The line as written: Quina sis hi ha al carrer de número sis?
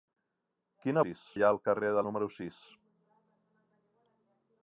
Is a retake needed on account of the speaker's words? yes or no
no